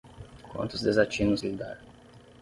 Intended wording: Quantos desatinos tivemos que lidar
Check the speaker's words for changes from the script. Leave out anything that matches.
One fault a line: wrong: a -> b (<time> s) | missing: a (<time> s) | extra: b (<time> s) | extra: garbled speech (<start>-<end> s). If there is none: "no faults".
missing: tivemos (1.4 s)